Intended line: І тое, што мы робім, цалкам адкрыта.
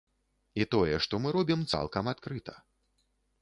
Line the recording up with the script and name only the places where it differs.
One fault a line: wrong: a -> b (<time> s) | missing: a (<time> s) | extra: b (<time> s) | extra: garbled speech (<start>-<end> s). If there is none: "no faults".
no faults